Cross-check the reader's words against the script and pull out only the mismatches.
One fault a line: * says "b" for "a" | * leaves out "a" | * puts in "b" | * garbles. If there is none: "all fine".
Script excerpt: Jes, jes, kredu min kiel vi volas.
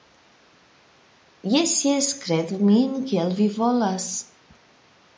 all fine